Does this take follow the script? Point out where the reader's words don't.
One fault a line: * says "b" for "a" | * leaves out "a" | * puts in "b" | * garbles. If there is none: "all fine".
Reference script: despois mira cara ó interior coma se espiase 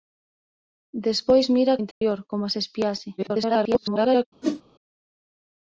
* leaves out "cara"
* garbles